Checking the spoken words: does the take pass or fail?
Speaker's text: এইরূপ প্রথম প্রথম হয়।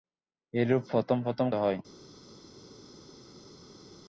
pass